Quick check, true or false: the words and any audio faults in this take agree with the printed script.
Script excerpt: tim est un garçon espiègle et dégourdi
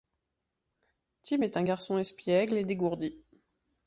true